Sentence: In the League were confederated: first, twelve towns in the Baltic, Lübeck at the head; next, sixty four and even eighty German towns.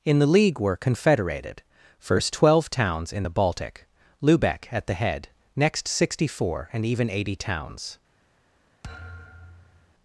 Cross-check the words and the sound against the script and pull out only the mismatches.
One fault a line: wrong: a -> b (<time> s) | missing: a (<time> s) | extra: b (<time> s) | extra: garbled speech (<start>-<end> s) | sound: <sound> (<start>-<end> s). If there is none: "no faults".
missing: German (7.4 s)
sound: thud (8.8-9.9 s)